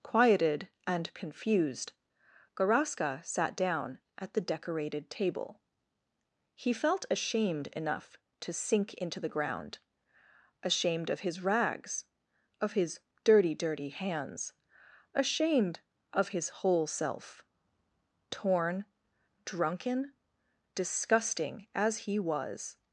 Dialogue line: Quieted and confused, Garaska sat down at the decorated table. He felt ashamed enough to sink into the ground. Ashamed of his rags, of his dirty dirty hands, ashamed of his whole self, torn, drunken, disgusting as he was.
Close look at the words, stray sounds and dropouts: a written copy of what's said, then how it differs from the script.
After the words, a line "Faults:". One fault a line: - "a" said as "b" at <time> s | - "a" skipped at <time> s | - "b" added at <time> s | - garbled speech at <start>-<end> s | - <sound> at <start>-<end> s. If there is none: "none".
Quieted and confused, Garaska sat down at the decorated table. He felt ashamed enough to sink into the ground. Ashamed of his rags, of his dirty dirty hands, ashamed of his whole self, torn, drunken, disgusting as he was.
Faults:
none